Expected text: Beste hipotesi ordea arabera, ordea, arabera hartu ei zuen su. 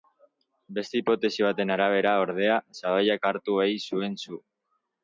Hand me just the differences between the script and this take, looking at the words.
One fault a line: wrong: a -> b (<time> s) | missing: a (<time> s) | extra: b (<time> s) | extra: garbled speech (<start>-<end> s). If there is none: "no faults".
wrong: ordea -> baten (1.5 s)
wrong: arabera -> sabaiak (2.8 s)